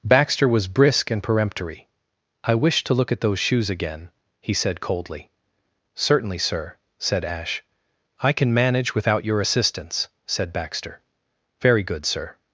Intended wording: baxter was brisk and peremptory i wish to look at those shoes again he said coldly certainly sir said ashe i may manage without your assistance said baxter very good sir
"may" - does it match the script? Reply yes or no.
no